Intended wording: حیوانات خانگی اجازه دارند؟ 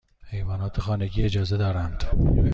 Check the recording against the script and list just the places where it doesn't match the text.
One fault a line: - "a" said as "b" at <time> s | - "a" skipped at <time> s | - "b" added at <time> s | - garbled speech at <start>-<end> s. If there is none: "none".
none